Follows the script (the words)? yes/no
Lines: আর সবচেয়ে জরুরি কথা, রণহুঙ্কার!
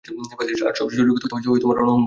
no